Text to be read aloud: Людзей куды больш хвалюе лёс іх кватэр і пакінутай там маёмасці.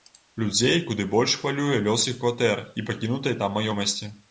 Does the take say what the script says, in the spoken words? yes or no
yes